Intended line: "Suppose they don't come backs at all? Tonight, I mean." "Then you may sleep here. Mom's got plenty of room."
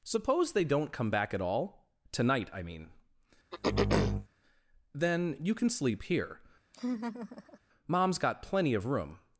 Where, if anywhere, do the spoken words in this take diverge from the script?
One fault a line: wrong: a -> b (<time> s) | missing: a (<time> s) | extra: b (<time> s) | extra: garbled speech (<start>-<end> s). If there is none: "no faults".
wrong: backs -> back (1.1 s)
wrong: may -> can (5.5 s)